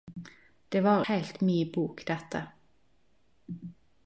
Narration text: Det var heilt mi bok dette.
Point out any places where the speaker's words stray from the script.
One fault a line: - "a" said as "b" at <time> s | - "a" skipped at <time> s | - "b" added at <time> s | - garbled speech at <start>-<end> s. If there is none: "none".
none